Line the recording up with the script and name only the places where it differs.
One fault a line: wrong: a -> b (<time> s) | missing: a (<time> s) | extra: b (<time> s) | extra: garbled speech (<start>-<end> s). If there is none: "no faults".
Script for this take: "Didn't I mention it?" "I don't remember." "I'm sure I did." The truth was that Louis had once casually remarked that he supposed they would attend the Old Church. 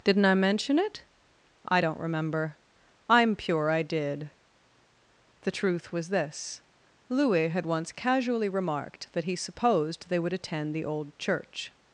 wrong: sure -> pure (3.4 s)
wrong: that -> this (6.1 s)